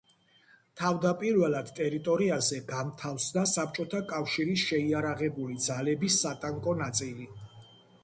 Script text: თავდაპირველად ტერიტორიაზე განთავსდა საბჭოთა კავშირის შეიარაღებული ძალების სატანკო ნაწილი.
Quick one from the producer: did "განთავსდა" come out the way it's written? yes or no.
yes